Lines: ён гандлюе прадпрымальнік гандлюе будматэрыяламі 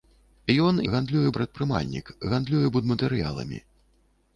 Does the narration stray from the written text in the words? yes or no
no